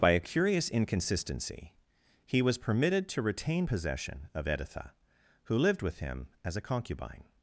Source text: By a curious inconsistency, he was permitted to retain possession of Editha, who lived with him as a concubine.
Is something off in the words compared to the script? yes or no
no